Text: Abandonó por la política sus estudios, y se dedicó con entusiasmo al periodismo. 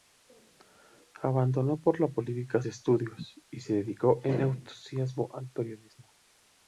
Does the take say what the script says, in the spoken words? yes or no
no